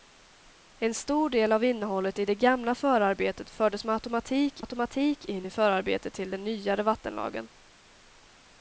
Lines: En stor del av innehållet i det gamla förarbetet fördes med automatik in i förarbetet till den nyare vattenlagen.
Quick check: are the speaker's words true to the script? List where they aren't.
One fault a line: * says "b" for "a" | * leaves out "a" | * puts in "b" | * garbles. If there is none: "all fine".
* puts in "automatik"